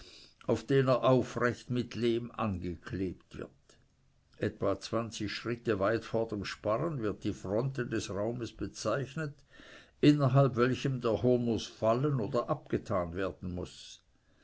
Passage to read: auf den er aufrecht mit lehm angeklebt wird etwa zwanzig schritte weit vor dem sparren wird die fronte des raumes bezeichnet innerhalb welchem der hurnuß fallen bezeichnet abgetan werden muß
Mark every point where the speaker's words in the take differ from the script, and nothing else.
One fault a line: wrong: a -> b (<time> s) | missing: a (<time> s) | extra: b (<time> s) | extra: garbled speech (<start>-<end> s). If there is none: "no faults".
wrong: bezeichnet -> oder (12.2 s)